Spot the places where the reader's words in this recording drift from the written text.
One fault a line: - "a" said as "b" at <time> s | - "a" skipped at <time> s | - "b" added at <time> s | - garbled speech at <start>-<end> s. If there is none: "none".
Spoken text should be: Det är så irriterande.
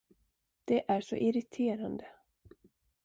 none